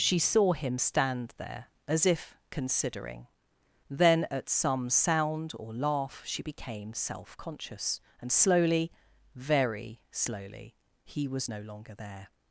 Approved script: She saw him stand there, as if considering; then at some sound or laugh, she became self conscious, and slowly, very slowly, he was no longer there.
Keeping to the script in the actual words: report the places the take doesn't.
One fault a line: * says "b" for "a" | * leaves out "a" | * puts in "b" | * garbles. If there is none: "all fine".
all fine